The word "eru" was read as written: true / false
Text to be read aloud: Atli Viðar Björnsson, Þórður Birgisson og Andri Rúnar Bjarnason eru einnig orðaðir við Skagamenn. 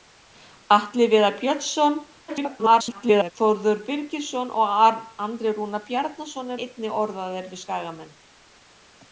false